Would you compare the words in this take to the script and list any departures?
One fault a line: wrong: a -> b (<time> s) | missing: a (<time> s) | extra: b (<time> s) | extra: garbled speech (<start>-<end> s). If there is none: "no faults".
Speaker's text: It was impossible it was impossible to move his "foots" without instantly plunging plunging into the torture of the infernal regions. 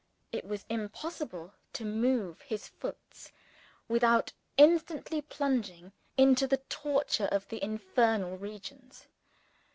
missing: it was impossible (1.5 s)
missing: plunging (5.9 s)